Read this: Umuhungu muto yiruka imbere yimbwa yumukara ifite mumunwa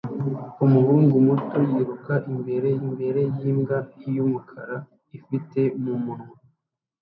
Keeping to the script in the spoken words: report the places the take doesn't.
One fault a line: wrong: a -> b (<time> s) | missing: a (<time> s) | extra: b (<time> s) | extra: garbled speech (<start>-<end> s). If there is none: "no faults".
extra: imbere (2.8 s)